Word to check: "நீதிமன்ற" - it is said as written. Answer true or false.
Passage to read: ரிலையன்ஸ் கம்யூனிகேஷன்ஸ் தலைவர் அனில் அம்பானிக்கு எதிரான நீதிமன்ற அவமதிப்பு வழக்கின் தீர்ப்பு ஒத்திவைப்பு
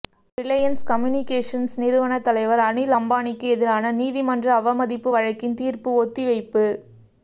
true